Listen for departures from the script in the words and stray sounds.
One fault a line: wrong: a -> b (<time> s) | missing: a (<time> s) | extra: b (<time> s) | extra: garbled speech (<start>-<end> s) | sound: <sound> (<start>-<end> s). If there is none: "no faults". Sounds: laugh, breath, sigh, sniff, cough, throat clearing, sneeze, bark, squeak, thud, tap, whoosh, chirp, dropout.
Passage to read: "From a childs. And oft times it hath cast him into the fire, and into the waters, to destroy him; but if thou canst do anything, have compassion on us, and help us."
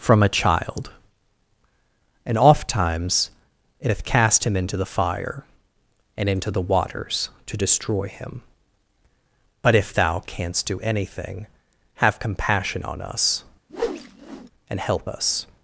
wrong: childs -> child (0.3 s)
sound: whoosh (13.7-14.5 s)